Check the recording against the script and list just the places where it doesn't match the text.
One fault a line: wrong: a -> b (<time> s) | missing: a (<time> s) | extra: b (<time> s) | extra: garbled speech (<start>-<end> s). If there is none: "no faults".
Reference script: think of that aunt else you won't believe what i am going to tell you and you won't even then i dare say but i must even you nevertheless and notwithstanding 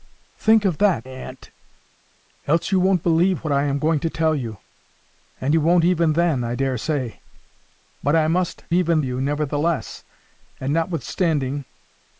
no faults